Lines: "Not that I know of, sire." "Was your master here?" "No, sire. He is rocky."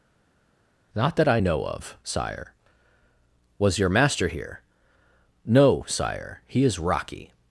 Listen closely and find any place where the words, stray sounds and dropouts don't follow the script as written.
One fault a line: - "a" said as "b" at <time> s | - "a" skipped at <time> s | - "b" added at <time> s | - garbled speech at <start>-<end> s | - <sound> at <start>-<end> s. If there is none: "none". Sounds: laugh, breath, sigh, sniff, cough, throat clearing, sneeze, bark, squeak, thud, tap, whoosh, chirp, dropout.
none